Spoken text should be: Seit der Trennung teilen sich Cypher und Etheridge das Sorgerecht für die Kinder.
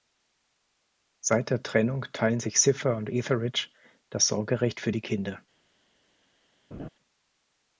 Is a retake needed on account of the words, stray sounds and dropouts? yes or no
yes